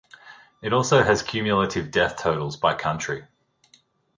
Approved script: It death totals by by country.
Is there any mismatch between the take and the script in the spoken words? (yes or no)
yes